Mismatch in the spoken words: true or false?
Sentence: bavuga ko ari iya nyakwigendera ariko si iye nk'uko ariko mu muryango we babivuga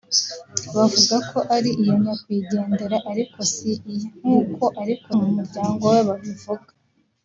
false